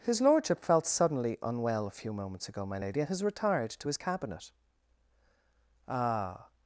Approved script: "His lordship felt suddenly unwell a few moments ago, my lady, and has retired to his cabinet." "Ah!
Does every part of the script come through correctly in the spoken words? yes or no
yes